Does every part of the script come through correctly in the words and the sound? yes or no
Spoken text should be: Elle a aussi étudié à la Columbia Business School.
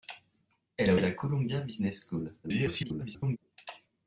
no